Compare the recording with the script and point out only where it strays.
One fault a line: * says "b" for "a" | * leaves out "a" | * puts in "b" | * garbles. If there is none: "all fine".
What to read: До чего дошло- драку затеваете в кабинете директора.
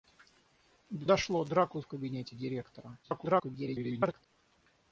* leaves out "чего"
* leaves out "затеваете"
* garbles